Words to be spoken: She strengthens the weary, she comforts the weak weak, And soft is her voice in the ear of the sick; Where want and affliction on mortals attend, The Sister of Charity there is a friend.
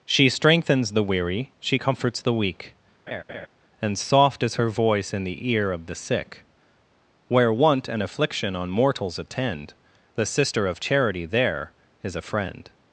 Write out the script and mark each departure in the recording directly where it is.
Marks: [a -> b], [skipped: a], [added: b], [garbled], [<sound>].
She strengthens the weary, she comforts the weak [skipped: weak,] [laugh] And soft is her voice in the ear of the sick; Where want and affliction on mortals attend, The Sister of Charity there is a friend.